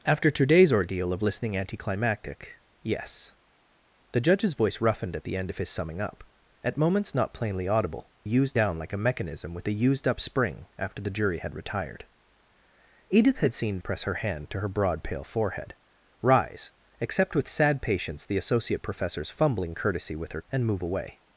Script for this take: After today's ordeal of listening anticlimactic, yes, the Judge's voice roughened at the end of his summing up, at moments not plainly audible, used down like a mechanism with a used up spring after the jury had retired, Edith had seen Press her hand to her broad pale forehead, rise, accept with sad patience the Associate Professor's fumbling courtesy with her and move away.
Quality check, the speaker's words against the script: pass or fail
pass